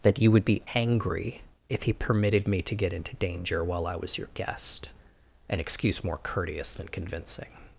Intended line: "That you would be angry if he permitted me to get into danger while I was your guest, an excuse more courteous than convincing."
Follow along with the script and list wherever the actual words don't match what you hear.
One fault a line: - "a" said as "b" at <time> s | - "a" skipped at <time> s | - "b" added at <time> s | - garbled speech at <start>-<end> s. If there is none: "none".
none